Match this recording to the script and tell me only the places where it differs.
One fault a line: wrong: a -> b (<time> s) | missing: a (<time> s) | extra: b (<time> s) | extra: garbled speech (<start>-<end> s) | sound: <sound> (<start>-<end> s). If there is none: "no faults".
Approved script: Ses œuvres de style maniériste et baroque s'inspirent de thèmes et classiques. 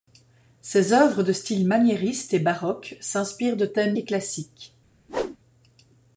sound: whoosh (5.1-5.4 s)